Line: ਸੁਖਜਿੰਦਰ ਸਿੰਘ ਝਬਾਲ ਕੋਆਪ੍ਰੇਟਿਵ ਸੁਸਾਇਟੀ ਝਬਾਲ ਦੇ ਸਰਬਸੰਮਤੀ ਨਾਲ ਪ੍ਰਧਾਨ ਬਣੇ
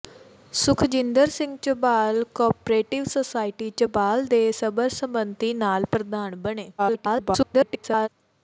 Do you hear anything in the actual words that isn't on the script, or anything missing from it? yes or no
yes